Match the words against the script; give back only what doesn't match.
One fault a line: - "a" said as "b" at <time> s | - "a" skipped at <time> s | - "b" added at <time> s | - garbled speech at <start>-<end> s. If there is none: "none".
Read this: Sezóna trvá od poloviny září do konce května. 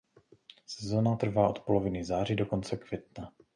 none